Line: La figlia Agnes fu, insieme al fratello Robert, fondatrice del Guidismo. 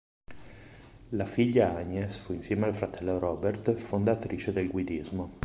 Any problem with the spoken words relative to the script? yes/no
no